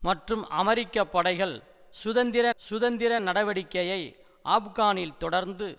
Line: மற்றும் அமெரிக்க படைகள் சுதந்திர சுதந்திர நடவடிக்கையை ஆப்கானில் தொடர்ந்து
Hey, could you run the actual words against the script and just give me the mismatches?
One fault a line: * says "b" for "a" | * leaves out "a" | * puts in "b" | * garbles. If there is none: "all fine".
all fine